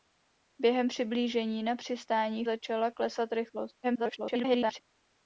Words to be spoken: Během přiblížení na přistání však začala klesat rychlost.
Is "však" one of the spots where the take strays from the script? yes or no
yes